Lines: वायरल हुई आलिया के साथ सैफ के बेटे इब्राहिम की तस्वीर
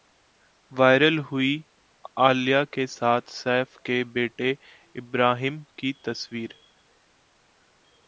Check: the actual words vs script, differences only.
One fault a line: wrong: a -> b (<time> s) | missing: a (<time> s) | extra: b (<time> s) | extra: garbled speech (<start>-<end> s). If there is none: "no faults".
no faults